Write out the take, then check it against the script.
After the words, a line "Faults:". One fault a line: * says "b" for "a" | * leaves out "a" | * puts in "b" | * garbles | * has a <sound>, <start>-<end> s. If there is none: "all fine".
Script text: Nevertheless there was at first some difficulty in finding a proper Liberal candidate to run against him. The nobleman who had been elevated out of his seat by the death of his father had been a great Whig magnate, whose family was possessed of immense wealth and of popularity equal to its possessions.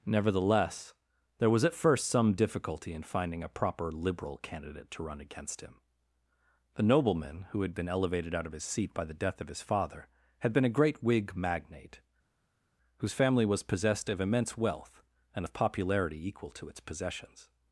Nevertheless there was at first some difficulty in finding a proper Liberal candidate to run against him. The nobleman who had been elevated out of his seat by the death of his father had been a great Whig magnate, whose family was possessed of immense wealth and of popularity equal to its possessions.
Faults:
all fine